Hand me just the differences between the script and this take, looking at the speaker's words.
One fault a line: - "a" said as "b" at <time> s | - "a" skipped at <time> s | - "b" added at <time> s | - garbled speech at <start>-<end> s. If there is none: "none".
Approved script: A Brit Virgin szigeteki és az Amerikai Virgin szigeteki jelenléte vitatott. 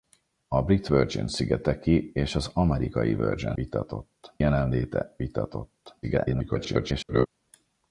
- "szigeteki" said as "vitatott" at 3.5 s
- garbled speech at 6.0-7.3 s